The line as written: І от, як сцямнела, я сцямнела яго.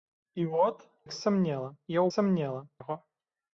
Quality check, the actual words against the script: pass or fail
pass